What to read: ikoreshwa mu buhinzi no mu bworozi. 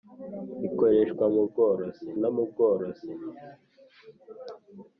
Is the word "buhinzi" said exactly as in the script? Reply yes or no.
no